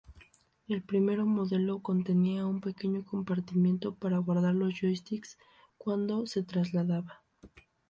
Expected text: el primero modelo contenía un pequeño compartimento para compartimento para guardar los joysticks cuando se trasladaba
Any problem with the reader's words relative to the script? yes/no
yes